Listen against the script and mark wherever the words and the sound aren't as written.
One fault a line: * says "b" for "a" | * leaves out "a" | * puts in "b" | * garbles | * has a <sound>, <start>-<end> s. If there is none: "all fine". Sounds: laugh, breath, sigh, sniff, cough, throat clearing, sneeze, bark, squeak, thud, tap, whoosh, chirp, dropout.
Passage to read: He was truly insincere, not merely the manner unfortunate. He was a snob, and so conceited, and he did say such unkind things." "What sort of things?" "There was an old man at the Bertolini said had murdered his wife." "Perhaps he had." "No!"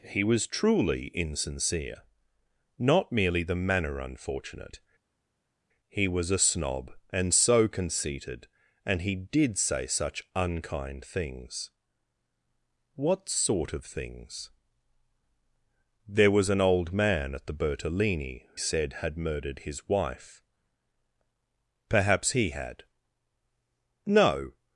all fine